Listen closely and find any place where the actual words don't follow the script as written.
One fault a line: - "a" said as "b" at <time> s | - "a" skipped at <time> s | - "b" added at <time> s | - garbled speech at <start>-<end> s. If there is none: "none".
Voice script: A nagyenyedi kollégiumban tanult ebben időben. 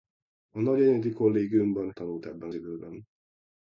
none